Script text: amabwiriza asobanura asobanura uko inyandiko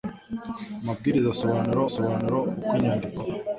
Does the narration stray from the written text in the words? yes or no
no